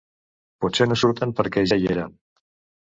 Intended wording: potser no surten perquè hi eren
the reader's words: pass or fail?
fail